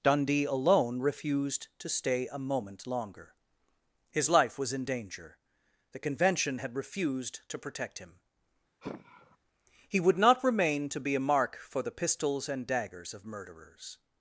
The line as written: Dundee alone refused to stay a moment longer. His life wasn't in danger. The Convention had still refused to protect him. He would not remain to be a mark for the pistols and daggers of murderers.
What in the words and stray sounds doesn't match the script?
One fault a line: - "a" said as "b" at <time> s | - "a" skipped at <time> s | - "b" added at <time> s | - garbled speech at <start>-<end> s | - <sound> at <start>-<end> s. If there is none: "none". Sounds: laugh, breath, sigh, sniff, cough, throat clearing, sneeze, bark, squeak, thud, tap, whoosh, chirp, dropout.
- "wasn't" said as "was" at 4.6 s
- "still" skipped at 6.8 s
- sigh at 8.8-9.4 s